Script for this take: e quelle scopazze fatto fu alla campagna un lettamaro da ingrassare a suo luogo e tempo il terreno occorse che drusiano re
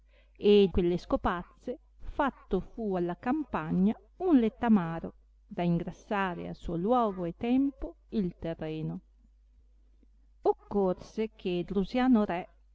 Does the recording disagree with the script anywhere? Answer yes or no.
no